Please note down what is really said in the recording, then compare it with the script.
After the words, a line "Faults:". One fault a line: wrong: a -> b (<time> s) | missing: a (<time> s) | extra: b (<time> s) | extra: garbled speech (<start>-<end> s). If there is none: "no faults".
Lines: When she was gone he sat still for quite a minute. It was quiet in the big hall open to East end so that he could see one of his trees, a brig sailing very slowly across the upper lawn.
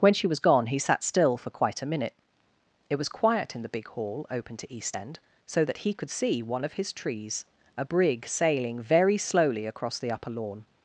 When she was gone he sat still for quite a minute. It was quiet in the big hall open to East end so that he could see one of his trees, a brig sailing very slowly across the upper lawn.
Faults:
no faults